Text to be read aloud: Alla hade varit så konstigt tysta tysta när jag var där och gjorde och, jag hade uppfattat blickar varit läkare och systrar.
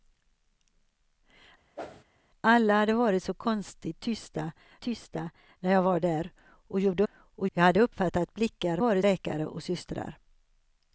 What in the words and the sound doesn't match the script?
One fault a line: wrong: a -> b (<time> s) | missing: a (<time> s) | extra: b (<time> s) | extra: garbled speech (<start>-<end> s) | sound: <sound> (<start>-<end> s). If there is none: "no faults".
sound: whoosh (1.8-2.0 s)